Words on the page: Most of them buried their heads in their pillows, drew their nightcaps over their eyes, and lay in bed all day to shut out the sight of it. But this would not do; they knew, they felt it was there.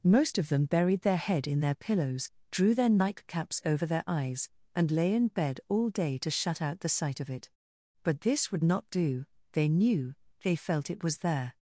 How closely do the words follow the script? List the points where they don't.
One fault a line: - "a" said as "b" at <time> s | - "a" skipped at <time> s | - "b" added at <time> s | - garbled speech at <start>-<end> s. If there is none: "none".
- "heads" said as "head" at 1.1 s